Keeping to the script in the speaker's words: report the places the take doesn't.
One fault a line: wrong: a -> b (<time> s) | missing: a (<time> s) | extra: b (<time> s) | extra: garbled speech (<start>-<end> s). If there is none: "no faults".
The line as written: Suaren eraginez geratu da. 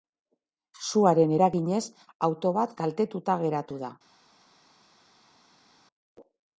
extra: auto bat kaltetuta (2.3 s)